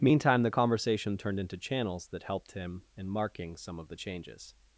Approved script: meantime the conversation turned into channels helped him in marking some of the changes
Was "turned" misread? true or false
false